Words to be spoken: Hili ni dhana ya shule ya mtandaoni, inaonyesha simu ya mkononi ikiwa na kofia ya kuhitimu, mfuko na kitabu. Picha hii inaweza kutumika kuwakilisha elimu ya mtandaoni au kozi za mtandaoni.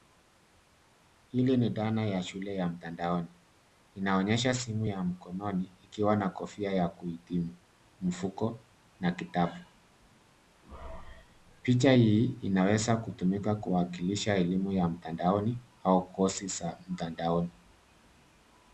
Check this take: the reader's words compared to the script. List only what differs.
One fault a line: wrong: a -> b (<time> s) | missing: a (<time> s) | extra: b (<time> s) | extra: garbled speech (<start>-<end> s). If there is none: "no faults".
no faults